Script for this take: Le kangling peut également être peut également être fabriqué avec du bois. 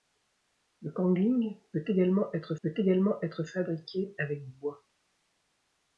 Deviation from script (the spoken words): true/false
false